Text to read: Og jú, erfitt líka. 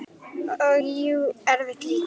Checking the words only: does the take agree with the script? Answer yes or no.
yes